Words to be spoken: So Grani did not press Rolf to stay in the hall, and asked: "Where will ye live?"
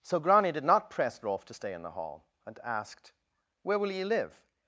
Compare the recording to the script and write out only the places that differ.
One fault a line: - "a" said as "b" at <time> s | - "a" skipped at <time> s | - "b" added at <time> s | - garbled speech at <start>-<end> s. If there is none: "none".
none